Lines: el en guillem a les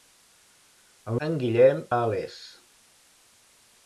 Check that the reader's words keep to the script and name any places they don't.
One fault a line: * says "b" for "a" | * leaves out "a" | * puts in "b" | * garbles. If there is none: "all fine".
all fine